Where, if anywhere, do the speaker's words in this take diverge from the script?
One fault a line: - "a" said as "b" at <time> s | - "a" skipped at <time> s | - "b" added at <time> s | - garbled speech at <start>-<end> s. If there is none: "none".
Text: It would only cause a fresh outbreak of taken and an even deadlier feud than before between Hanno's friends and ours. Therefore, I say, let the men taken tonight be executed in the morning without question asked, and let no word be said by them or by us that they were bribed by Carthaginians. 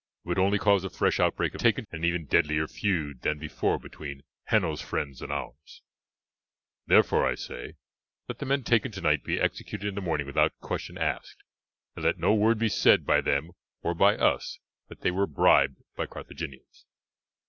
none